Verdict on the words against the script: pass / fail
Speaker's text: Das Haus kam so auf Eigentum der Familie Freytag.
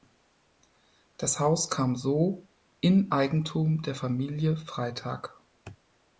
fail